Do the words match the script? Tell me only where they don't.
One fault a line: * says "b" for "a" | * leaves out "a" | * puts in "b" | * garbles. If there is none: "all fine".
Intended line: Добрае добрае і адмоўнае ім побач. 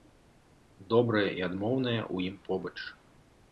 * leaves out "добрае"
* puts in "ў"